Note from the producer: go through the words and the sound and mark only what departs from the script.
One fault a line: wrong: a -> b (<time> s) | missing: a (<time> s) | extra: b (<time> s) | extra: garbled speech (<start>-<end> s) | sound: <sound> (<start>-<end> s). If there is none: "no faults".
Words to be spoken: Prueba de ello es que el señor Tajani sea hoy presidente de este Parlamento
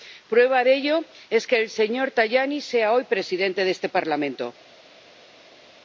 no faults